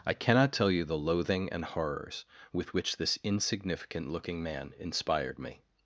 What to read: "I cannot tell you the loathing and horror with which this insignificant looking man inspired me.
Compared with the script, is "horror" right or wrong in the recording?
wrong